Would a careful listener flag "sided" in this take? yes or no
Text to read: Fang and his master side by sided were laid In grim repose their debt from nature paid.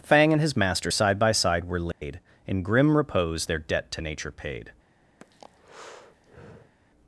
yes